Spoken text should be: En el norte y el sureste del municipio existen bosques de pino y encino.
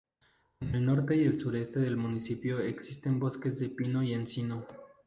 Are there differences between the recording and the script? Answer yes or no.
no